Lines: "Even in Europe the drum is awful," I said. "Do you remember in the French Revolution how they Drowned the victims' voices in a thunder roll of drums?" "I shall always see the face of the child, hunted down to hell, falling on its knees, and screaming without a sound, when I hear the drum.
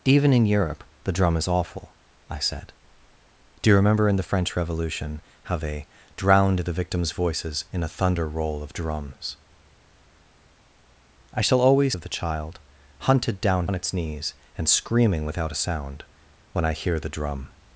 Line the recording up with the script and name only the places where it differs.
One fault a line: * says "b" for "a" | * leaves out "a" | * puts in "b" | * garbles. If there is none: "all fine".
* leaves out "see the face"
* leaves out "to hell falling"